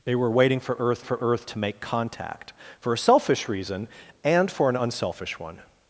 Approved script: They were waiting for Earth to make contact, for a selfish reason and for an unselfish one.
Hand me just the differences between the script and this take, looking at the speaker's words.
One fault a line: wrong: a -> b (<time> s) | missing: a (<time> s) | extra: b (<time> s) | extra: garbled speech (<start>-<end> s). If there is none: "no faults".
extra: for Earth (1.0 s)